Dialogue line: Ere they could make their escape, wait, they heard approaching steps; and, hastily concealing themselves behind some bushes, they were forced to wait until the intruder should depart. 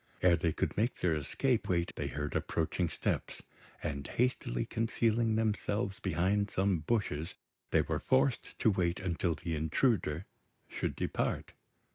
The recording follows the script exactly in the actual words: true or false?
true